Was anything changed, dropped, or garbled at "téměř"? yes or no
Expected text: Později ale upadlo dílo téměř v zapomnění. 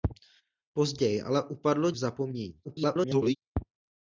yes